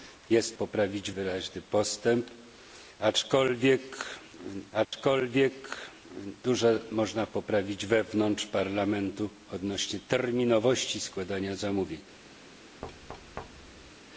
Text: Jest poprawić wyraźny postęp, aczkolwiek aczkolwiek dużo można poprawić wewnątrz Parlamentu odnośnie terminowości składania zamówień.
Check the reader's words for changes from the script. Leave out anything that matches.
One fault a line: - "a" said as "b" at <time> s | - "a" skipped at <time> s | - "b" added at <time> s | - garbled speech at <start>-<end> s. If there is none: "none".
none